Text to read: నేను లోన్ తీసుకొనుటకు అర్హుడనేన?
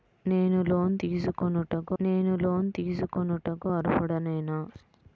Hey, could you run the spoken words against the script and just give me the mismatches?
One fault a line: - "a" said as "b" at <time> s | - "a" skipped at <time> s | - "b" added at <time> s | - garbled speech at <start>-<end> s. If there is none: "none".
- "నేను లోన్ తీసుకొనుటకు" added at 2.0 s